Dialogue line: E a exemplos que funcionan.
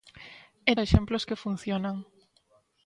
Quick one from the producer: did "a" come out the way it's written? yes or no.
yes